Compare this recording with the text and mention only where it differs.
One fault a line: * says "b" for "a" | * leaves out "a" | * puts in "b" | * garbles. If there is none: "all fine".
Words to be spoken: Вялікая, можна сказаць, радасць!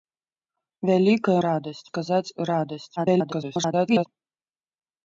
* says "радасць" for "можна"
* garbles